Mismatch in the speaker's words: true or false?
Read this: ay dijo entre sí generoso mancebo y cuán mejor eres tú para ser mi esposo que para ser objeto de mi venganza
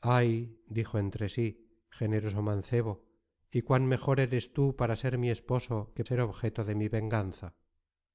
true